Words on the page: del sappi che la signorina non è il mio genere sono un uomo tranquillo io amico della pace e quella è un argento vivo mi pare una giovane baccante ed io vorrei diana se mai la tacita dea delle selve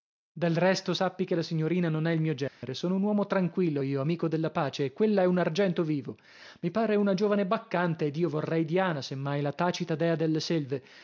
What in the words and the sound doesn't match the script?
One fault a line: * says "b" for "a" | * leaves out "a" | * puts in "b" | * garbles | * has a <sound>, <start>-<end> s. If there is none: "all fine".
* puts in "resto"
* has a dropout, 2.5-2.6 s